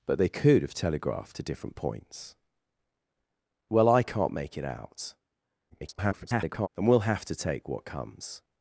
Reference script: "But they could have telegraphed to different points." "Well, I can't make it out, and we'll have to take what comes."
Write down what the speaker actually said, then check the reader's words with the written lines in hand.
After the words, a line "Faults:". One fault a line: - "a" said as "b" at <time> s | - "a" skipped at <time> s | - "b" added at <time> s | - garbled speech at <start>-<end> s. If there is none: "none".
"But they could have telegraphed to different points." "Well, I can't make it out, [garbled] and we'll have to take what comes."
Faults:
- garbled speech at 5.7-6.7 s